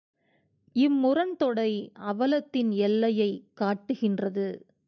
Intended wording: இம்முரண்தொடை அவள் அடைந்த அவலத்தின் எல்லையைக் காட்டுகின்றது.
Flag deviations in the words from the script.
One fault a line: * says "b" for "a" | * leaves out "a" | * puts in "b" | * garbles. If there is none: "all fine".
* leaves out "அவள் அடைந்த"